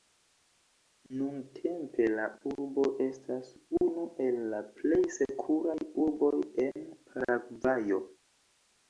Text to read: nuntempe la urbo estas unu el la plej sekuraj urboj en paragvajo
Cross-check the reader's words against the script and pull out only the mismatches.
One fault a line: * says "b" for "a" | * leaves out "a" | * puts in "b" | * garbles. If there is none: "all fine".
all fine